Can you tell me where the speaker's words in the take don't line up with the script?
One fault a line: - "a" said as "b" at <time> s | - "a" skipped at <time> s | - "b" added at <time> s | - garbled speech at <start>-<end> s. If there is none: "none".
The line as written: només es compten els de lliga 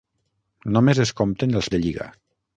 none